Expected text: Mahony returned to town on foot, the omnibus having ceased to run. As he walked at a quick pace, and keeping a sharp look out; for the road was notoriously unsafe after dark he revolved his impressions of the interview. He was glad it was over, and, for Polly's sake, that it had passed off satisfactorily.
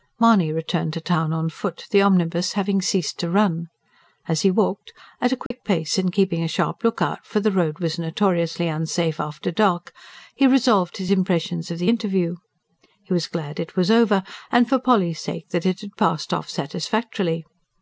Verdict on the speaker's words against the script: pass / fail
pass